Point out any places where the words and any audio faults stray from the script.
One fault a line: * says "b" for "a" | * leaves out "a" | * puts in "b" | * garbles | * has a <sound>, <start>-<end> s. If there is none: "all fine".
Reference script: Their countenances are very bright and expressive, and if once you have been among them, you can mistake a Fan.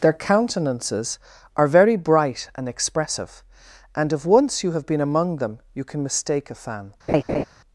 * has a laugh, 7.1-7.4 s